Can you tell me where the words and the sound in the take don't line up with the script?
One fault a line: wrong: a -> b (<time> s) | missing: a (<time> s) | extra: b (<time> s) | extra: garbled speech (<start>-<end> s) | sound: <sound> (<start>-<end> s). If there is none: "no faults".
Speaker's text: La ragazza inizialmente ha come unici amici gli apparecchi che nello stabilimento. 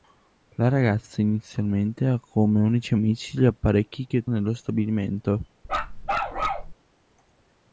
sound: bark (5.6-6.7 s)